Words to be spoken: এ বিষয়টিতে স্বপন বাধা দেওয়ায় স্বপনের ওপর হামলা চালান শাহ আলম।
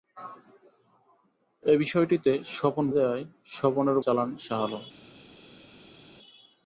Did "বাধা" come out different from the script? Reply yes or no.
yes